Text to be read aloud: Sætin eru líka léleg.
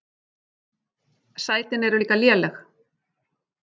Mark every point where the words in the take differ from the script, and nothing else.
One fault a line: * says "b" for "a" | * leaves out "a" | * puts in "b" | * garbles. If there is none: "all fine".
all fine